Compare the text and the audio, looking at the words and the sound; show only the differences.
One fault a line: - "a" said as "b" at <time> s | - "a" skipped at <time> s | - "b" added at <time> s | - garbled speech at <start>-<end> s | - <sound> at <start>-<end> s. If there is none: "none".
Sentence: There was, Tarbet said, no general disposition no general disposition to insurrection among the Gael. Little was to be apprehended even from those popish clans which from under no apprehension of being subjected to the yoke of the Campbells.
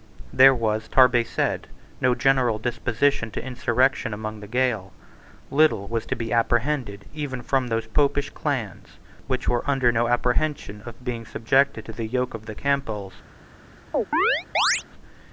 - "no general disposition" skipped at 3.3 s
- "from" said as "were" at 9.5 s
- chirp at 13.9-14.8 s